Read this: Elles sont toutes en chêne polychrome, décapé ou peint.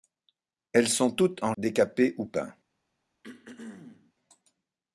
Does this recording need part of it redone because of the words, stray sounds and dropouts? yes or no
yes